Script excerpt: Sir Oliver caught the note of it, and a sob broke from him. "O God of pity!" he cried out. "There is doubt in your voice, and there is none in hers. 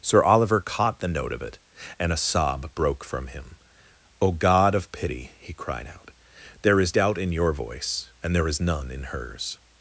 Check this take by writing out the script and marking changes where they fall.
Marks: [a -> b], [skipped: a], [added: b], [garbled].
Sir Oliver caught the note of it, and a sob broke from him. "O God of pity!" he cried out. "There is doubt in your voice, and there is none in hers.